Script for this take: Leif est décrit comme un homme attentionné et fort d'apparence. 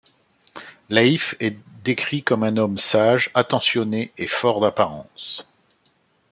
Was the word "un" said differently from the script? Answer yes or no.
no